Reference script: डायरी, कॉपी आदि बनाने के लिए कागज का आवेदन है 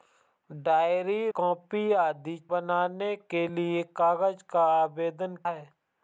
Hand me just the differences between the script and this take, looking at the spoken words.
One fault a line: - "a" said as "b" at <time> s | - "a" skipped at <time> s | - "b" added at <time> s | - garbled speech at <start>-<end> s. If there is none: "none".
none